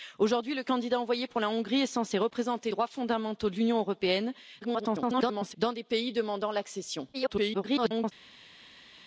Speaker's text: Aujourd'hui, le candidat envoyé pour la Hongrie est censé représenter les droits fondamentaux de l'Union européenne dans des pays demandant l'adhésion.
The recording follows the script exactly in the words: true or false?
false